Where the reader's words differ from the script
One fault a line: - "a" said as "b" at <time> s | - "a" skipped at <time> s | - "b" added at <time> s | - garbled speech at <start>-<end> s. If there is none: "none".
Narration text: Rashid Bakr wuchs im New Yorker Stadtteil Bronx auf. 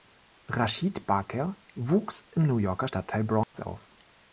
none